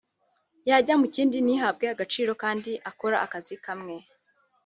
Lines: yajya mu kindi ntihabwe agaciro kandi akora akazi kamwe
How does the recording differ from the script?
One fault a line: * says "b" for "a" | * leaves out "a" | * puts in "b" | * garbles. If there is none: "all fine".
all fine